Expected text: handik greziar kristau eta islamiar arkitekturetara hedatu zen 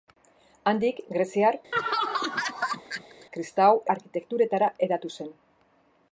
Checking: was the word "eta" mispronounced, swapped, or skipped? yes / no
yes